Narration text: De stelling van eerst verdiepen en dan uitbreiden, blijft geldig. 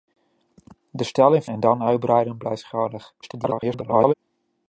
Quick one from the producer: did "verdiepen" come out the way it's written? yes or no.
no